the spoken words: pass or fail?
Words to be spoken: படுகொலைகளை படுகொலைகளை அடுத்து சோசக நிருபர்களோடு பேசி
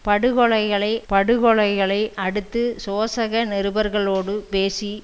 pass